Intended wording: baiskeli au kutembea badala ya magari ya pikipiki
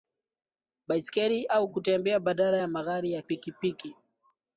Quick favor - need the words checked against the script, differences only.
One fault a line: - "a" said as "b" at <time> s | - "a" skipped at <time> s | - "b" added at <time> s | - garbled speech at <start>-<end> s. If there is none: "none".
none